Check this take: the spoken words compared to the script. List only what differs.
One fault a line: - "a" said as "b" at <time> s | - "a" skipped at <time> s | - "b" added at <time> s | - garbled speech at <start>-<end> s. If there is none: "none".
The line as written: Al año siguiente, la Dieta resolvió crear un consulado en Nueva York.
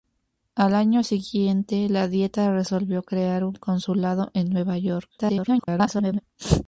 - garbled speech at 5.2-6.2 s